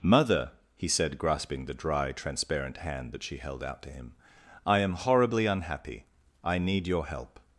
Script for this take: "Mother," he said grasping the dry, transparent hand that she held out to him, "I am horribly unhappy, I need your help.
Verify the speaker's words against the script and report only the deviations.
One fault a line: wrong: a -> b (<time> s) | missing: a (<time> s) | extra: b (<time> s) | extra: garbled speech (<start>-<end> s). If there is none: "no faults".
no faults